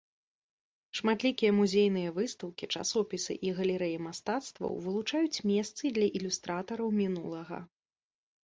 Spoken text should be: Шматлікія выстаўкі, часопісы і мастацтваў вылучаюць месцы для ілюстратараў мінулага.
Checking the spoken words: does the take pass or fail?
fail